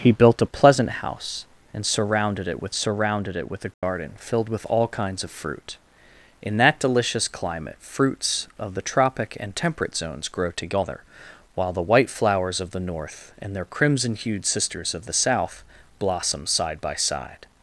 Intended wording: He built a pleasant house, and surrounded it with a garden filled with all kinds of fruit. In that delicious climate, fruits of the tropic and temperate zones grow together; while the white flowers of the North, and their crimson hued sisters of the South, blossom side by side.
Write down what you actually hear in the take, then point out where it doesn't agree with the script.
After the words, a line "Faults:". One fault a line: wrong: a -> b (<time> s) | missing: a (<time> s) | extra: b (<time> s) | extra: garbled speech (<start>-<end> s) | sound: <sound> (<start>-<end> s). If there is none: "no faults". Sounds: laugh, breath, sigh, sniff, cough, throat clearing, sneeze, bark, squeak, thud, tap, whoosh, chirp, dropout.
He built a pleasant house, and surrounded it with surrounded it with a garden filled with all kinds of fruit. In that delicious climate, fruits of the tropic and temperate zones grow together; while the white flowers of the North, and their crimson hued sisters of the South, blossom side by side.
Faults:
extra: surrounded it with (2.7 s)
sound: dropout (3.7-3.8 s)